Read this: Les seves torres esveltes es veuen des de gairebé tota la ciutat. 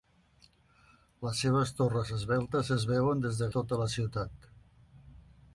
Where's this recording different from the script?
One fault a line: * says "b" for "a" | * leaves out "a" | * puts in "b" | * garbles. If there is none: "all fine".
* leaves out "gairebé"